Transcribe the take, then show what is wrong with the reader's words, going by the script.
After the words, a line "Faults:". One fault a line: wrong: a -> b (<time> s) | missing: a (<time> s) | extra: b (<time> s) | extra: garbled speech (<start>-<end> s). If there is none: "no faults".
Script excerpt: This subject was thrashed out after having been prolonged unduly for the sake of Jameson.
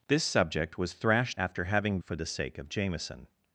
This subject was thrashed after having for the sake of Jameson.
Faults:
missing: out (1.4 s)
missing: been prolonged unduly (2.0 s)